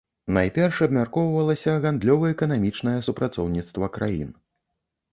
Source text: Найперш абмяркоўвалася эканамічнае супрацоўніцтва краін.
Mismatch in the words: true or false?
true